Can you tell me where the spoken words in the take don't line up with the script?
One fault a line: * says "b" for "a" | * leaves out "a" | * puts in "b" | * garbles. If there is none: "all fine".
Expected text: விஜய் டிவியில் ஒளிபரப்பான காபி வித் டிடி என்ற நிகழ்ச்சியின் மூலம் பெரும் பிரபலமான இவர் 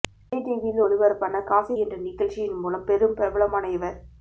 * leaves out "வித் டிடி"